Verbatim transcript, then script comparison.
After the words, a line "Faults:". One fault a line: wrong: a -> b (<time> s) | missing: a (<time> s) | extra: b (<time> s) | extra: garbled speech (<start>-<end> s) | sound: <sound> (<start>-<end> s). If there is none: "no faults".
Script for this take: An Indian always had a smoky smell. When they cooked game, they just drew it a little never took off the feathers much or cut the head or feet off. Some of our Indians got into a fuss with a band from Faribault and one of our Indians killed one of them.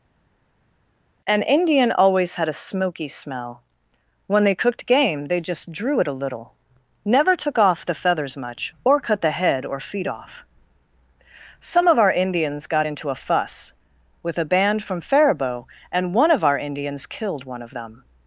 An Indian always had a smoky smell. When they cooked game, they just drew it a little never took off the feathers much or cut the head or feet off. Some of our Indians got into a fuss with a band from Faribault and one of our Indians killed one of them.
Faults:
no faults